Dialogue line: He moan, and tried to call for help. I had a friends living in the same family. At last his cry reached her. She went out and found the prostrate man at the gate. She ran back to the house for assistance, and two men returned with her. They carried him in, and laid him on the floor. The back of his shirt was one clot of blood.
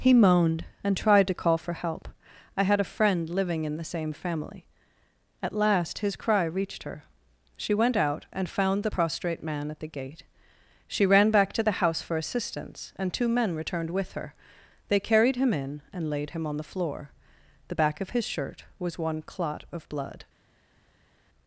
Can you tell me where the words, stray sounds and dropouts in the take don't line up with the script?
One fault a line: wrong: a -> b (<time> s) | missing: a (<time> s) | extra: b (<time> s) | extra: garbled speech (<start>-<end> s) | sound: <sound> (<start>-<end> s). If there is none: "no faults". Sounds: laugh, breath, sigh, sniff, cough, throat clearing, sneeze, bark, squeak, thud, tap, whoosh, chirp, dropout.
wrong: moan -> moaned (0.1 s)
wrong: friends -> friend (2.9 s)